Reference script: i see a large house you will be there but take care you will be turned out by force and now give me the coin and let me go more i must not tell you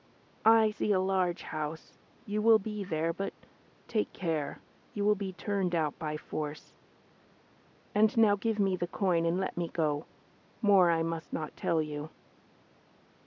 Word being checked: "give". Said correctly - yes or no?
yes